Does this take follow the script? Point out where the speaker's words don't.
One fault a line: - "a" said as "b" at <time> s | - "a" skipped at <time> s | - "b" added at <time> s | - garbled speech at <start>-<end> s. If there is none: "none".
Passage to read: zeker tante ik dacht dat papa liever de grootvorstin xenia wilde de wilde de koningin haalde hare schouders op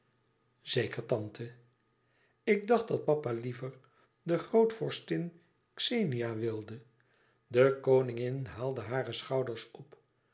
- "wilde de" skipped at 7.8 s